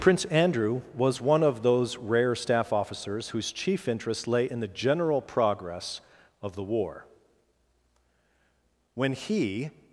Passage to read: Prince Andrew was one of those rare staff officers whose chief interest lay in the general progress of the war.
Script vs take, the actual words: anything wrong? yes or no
yes